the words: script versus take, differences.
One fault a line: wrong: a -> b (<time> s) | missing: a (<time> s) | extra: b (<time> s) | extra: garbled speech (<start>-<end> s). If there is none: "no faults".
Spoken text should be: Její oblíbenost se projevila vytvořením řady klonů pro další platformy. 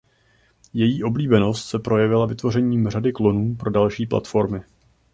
no faults